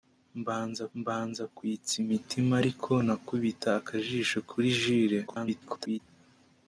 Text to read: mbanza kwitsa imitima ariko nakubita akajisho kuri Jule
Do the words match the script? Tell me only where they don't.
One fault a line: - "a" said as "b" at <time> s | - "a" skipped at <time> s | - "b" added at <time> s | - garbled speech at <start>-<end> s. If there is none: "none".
- "mbanza" added at 1.0 s
- garbled speech at 5.3-6.0 s